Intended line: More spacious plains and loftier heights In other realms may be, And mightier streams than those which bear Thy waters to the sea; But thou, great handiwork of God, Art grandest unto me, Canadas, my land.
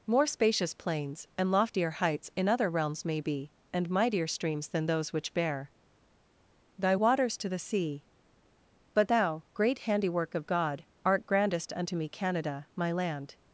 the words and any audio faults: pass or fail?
fail